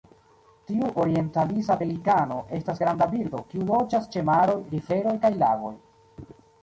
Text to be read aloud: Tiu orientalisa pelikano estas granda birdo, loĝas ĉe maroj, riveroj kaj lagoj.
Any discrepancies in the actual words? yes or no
yes